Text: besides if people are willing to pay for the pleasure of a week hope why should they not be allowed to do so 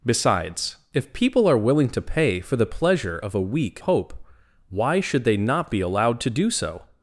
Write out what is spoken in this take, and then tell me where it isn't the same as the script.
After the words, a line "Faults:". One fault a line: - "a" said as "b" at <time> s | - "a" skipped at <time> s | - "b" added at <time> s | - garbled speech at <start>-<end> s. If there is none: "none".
besides if people are willing to pay for the pleasure of a week hope why should they not be allowed to do so
Faults:
none